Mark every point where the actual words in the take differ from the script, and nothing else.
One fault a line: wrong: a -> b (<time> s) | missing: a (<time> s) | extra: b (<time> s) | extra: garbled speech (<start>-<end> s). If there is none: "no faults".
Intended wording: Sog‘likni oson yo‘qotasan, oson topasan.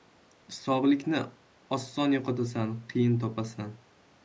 wrong: oson -> qiyin (3.0 s)